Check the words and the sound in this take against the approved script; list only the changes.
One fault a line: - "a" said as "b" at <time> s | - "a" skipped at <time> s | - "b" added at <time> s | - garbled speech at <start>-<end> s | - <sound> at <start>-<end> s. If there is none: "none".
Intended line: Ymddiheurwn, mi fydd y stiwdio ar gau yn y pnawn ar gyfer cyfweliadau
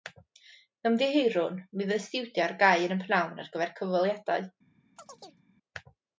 - chirp at 5.0-5.4 s